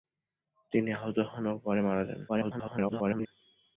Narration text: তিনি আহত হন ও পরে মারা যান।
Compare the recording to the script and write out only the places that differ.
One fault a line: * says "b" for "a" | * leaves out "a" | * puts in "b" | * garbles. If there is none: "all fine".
* garbles